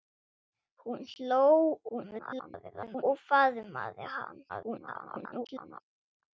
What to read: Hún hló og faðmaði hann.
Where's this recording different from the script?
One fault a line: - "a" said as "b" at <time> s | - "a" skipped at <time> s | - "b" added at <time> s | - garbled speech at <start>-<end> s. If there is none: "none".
- garbled speech at 1.9-3.0 s
- garbled speech at 4.5-5.8 s